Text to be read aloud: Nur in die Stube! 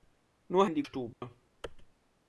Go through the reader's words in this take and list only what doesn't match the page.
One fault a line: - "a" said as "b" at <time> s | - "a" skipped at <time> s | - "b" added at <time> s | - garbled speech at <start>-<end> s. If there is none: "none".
none